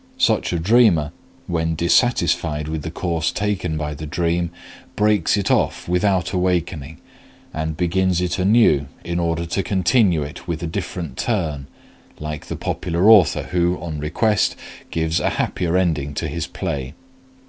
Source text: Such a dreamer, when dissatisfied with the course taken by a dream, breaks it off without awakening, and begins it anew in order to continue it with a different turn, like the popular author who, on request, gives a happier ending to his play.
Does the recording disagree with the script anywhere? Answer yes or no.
yes